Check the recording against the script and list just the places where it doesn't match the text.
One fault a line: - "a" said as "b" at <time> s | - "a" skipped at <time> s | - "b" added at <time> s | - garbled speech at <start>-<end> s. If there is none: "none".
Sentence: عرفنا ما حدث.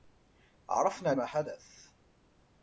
none